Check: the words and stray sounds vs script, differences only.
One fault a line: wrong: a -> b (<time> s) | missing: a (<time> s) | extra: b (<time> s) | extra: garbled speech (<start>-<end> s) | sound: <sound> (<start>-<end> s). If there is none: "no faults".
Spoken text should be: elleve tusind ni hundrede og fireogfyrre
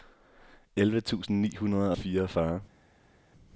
no faults